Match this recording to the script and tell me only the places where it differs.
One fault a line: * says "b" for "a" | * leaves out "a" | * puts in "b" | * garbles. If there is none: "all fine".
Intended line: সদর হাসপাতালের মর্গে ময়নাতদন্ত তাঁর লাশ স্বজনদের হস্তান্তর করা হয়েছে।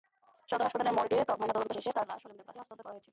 * puts in "শেষে"
* puts in "কাছে"